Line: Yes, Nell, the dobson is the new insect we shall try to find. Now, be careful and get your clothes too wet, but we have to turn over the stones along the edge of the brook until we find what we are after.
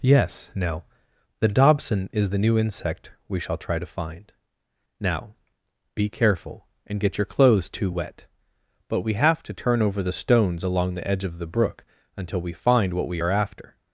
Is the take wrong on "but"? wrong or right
right